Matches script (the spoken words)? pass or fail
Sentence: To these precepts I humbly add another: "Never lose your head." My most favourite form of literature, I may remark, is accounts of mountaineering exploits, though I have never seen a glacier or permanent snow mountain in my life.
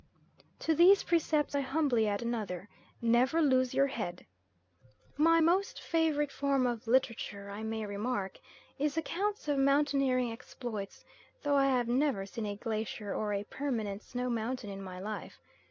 fail